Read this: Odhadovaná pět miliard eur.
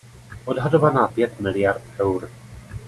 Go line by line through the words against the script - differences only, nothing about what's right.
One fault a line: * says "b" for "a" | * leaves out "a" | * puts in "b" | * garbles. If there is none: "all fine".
all fine